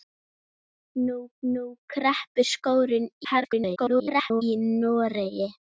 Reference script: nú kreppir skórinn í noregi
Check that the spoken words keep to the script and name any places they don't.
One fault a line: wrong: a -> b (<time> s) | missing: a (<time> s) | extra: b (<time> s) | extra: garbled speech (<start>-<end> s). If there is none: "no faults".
extra: nú (1.5 s)
extra: garbled speech (3.2-4.4 s)